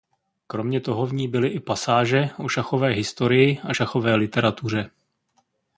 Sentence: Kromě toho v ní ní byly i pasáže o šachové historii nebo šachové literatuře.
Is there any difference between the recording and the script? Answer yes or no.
yes